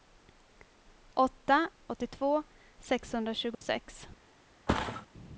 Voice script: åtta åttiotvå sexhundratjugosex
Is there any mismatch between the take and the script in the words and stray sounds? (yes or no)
yes